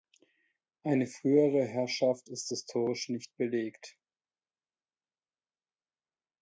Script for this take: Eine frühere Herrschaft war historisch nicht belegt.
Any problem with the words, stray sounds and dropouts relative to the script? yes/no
yes